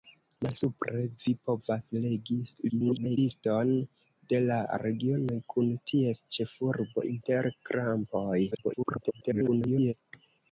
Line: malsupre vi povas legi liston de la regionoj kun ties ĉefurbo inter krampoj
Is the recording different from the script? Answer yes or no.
yes